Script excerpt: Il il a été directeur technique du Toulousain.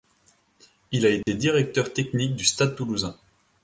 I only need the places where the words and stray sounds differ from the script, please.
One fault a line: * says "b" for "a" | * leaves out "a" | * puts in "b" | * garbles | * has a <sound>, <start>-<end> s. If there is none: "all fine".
* leaves out "il"
* has a dropout, 1.2-1.3 s
* puts in "Stade"